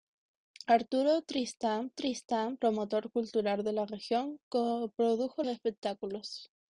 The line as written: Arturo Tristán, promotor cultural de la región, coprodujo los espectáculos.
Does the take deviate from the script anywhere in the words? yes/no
yes